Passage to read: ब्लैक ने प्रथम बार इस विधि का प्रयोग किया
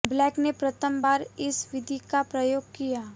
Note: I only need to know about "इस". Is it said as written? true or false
true